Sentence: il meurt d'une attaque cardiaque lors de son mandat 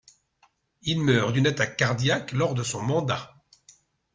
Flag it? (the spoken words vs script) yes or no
no